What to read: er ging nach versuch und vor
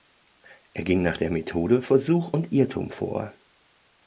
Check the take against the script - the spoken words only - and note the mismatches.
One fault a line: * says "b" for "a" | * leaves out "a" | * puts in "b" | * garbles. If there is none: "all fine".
* puts in "der methode"
* puts in "irrtum"